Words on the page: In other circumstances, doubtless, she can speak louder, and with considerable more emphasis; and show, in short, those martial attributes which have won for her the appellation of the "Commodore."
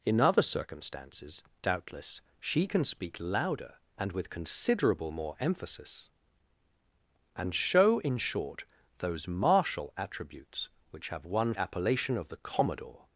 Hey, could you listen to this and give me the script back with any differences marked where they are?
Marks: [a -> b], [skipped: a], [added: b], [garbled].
In other circumstances, doubtless, she can speak louder, and with considerable more emphasis; and show, in short, those martial attributes which have won [skipped: for her the] appellation of the "Commodore."